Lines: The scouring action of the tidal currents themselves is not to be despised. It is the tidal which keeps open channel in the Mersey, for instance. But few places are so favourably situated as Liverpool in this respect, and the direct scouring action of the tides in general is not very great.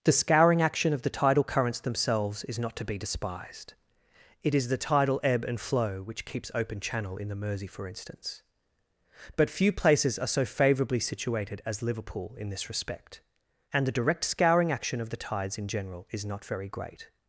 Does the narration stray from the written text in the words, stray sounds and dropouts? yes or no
yes